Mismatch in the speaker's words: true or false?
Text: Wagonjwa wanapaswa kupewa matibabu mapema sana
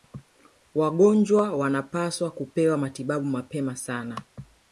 false